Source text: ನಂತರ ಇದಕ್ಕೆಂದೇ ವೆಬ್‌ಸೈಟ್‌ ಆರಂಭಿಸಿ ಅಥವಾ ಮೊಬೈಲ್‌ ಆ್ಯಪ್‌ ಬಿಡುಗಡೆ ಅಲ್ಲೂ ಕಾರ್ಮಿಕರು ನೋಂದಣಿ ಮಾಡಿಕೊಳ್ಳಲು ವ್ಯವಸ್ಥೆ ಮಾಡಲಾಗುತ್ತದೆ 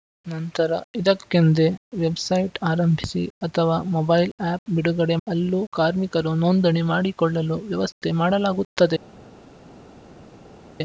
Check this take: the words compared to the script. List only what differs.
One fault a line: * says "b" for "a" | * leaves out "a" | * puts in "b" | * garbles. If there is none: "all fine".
all fine